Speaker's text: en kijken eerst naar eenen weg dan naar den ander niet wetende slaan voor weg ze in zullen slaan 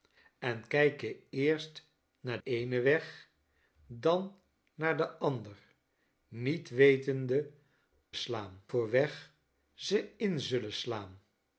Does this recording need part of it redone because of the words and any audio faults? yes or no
no